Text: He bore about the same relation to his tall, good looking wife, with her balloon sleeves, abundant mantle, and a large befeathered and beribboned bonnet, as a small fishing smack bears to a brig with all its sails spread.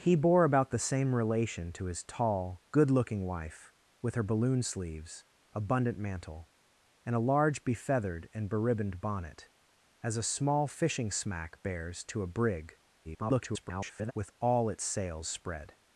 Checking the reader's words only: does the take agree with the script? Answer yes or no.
no